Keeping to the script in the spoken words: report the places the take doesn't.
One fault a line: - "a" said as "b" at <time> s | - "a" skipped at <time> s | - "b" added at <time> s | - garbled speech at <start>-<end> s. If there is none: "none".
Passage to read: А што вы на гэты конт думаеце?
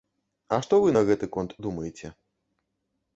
none